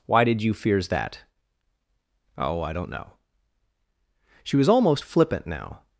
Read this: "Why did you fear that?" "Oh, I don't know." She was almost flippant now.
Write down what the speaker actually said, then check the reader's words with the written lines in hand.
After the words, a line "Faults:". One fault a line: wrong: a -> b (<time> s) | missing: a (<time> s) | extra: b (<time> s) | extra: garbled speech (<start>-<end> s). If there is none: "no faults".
"Why did you fears that?" "Oh, I don't know." She was almost flippant now.
Faults:
wrong: fear -> fears (0.5 s)